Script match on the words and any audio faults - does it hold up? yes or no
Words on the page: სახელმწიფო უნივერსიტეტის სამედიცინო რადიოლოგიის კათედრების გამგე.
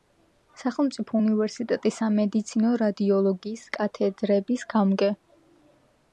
yes